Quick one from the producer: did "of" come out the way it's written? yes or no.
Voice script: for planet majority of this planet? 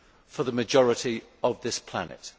yes